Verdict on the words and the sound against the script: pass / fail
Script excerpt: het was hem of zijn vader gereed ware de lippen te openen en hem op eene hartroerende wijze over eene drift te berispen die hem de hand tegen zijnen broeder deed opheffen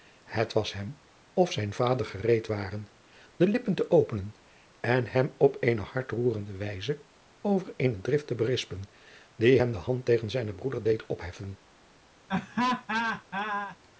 fail